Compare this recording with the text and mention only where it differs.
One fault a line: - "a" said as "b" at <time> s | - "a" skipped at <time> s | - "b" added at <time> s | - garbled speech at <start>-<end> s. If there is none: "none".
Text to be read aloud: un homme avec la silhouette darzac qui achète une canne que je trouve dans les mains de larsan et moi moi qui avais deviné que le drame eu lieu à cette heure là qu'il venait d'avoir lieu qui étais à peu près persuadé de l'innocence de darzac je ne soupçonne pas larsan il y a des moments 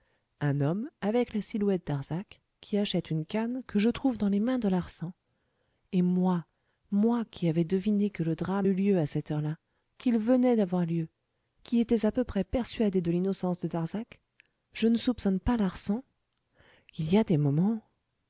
none